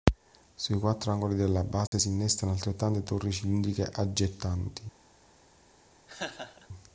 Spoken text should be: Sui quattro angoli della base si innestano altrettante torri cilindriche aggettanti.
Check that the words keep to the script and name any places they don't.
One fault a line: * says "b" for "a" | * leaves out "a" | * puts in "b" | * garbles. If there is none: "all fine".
all fine